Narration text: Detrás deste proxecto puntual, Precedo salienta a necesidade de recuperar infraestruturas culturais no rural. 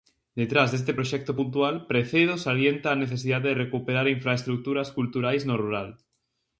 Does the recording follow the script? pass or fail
pass